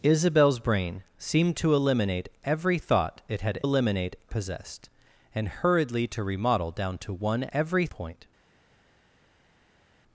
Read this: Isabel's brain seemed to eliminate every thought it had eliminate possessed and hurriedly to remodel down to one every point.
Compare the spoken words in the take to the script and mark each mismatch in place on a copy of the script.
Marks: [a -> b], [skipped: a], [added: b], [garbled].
Isabel's brain seemed to eliminate every thought it had eliminate possessed and hurriedly to remodel down to one every point.